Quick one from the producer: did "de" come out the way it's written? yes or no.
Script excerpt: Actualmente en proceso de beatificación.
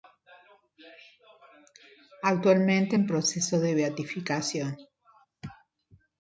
yes